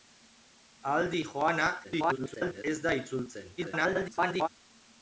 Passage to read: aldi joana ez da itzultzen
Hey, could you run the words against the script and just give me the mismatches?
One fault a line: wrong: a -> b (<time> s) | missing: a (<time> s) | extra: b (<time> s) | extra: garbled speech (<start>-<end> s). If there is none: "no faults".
extra: garbled speech (1.8-2.6 s)
extra: garbled speech (3.6-4.5 s)